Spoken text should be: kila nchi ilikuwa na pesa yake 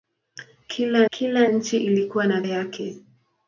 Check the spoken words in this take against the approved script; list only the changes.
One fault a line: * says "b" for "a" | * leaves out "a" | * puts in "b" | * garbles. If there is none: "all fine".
* puts in "kila"
* leaves out "pesa"